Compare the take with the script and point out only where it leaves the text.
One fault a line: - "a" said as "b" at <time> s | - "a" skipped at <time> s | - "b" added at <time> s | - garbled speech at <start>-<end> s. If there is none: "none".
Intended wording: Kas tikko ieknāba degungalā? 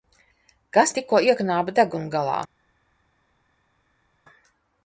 none